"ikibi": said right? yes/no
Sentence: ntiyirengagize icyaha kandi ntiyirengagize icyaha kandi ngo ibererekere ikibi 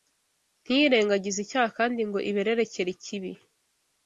yes